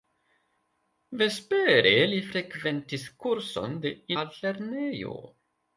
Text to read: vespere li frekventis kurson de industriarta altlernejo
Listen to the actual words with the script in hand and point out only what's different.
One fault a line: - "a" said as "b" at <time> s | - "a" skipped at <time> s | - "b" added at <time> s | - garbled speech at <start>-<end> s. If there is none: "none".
- "industriarta" skipped at 3.9 s